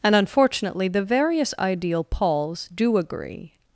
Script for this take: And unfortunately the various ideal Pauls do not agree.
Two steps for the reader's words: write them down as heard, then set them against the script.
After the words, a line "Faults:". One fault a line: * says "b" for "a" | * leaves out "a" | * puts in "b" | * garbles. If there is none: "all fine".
And unfortunately the various ideal Pauls do agree.
Faults:
* leaves out "not"